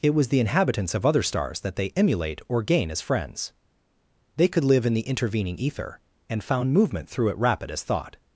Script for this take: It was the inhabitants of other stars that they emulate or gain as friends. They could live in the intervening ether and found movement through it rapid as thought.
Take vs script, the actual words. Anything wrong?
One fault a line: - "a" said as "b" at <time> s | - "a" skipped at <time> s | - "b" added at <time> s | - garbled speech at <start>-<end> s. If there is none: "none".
none